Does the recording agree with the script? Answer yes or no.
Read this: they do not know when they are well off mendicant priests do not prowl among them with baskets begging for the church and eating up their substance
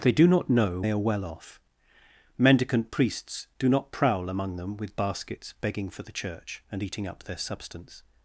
no